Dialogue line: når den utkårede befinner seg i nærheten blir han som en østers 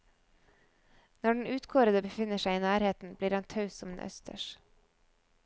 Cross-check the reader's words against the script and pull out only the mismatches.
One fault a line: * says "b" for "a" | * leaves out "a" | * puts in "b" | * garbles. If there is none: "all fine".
* puts in "taus"